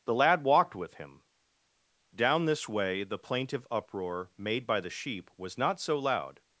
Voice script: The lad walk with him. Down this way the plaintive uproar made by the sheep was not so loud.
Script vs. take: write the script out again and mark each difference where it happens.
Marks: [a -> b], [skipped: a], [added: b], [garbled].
The lad [walk -> walked] with him. Down this way the plaintive uproar made by the sheep was not so loud.